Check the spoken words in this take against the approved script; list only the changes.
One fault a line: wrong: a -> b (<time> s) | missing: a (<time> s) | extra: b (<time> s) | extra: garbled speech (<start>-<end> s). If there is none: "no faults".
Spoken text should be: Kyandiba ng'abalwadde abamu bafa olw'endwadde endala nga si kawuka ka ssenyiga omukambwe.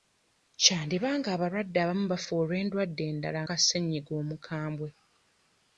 missing: nga si kawuka (3.4 s)